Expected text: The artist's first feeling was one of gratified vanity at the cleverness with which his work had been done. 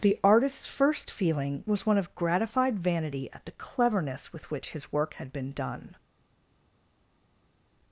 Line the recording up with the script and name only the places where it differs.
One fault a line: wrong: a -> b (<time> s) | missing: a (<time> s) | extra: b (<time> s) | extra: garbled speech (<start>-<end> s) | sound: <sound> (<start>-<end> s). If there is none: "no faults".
no faults